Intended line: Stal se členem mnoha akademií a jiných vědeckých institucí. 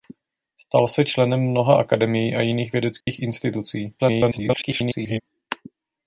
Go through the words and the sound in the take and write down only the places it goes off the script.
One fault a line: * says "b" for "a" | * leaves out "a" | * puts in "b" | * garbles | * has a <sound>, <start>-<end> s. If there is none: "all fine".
* has a dropout, 3.0-3.1 s
* garbles